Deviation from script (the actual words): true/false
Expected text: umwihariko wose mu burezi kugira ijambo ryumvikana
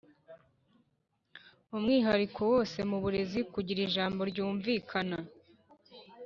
false